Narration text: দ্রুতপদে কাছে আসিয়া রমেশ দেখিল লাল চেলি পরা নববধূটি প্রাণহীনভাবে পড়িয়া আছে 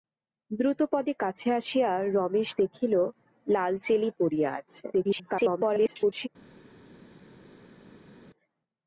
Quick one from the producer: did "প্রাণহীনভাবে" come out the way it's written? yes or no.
no